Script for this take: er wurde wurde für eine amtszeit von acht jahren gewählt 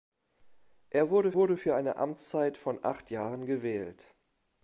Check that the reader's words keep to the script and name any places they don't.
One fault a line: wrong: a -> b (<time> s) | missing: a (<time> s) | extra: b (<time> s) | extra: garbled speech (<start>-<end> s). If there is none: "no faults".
no faults